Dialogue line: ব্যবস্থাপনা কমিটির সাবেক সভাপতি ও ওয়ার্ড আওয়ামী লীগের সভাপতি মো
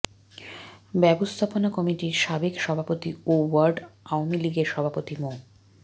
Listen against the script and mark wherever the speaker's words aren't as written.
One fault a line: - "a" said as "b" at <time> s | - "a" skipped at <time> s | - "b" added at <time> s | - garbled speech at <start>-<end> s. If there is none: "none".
none